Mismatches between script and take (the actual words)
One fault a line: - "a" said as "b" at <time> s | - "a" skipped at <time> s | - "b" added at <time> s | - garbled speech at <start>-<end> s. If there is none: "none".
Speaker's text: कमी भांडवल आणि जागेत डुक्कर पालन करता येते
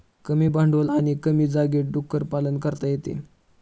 - "कमी" added at 1.2 s